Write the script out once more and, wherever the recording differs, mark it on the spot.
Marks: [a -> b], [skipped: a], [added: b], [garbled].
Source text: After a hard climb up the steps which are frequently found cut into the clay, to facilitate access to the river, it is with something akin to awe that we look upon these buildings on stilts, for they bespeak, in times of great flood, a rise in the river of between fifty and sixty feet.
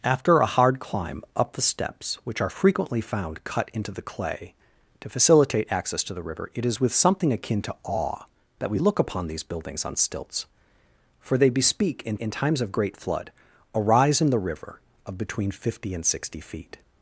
After a hard climb up the steps which are frequently found cut into the clay, to facilitate access to the river, it is with something akin to awe that we look upon these buildings on stilts, for they bespeak, in [added: in] times of great flood, a rise in the river of between fifty and sixty feet.